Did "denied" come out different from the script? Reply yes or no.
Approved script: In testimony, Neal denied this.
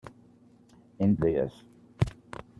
yes